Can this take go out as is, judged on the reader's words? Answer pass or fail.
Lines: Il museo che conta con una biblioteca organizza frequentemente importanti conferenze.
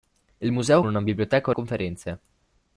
fail